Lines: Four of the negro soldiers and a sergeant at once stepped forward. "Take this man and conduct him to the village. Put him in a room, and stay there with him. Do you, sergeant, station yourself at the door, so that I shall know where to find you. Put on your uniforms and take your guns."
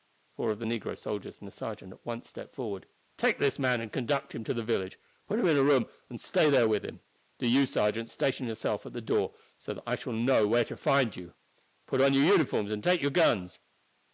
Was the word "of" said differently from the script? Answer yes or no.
no